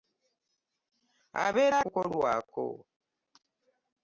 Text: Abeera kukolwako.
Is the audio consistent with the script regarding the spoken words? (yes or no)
yes